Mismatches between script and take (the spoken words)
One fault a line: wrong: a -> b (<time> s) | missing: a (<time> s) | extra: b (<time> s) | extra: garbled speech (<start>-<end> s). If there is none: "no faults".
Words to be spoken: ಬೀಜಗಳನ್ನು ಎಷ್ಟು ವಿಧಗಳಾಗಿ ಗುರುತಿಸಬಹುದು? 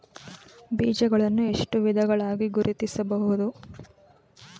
no faults